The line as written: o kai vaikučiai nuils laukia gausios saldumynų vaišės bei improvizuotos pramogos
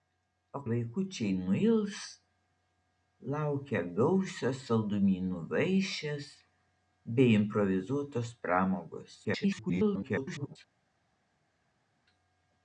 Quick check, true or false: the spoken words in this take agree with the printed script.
false